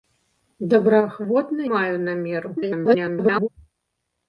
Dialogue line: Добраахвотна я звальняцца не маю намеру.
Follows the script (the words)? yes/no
no